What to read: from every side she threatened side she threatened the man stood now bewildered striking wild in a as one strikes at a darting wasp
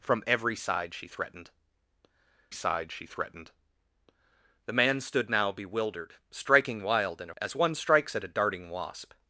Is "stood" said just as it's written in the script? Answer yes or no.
yes